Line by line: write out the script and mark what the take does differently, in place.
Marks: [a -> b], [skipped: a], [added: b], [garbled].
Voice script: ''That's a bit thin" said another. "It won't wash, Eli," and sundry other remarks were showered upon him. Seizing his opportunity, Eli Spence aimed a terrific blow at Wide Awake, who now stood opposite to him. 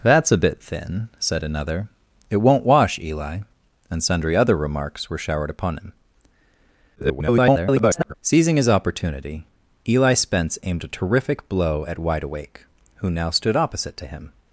''That's a bit thin" said another. "It won't wash, Eli," and sundry other remarks were showered upon him. [garbled] Seizing his opportunity, Eli Spence aimed a terrific blow at Wide Awake, who now stood opposite to him.